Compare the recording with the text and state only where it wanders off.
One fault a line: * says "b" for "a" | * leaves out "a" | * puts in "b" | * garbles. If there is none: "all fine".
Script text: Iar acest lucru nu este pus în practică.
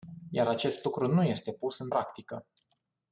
all fine